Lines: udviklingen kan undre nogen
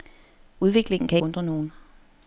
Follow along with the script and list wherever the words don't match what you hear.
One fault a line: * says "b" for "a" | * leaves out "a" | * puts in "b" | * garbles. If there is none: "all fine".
all fine